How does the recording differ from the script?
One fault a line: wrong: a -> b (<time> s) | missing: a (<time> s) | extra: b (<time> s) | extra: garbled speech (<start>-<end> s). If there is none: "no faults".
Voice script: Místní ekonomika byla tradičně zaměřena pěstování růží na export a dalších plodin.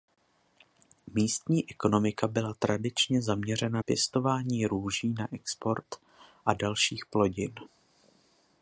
no faults